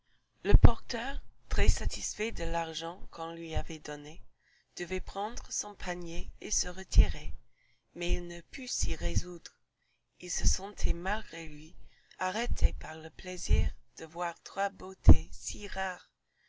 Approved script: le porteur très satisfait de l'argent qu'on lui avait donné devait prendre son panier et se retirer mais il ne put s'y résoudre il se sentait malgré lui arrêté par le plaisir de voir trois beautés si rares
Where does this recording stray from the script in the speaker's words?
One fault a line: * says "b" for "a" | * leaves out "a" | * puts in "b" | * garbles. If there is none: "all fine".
all fine